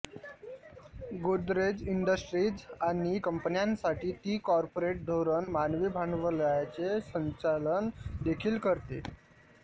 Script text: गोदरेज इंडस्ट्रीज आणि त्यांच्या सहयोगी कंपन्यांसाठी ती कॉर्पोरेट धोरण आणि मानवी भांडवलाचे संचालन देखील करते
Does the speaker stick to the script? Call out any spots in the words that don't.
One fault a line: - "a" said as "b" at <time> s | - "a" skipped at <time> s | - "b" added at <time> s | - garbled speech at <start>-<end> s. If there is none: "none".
- "त्यांच्या सहयोगी" skipped at 3.2 s
- "आणि" skipped at 5.5 s